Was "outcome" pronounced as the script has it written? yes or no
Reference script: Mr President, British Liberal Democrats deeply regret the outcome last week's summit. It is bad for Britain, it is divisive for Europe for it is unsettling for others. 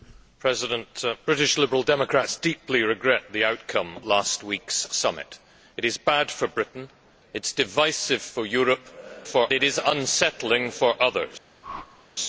yes